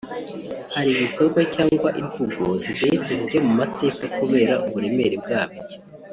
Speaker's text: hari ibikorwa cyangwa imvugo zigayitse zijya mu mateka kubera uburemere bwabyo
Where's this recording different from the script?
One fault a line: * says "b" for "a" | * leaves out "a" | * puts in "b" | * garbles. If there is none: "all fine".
all fine